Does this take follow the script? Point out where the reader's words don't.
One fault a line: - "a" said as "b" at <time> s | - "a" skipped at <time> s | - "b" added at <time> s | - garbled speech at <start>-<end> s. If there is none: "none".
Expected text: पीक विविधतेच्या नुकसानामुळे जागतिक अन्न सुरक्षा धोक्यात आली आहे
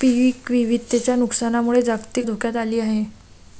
- "अन्न सुरक्षा" skipped at 2.3 s